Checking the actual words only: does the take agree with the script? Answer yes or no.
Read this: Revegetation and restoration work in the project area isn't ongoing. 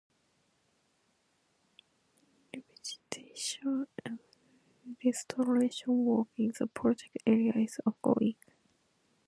no